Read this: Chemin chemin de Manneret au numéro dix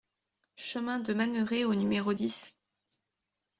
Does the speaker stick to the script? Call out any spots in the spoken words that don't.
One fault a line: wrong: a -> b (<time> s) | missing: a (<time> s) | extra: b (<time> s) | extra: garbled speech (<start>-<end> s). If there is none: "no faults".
missing: chemin (1.0 s)